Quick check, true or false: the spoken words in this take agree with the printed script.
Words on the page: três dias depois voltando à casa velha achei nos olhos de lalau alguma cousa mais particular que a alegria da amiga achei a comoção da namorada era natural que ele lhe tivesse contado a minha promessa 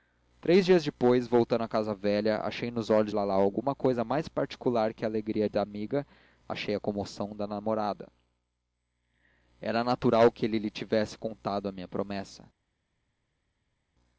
false